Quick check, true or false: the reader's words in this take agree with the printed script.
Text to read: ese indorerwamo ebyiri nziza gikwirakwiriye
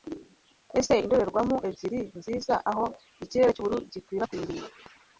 false